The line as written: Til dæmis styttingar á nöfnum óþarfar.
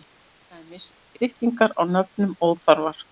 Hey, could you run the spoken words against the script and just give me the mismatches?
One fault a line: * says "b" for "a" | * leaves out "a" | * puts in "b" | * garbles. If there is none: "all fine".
all fine